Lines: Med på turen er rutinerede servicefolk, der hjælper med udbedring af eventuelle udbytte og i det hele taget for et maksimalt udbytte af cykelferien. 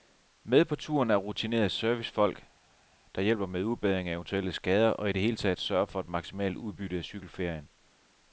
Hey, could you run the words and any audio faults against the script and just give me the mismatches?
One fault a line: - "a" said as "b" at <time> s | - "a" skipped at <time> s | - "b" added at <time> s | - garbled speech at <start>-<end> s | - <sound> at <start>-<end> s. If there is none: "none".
- "udbytte" said as "skader" at 4.5 s
- "sørger" added at 5.6 s